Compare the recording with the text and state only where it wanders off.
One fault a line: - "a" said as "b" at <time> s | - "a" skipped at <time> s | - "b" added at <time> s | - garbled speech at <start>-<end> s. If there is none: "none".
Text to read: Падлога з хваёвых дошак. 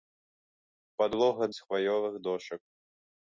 none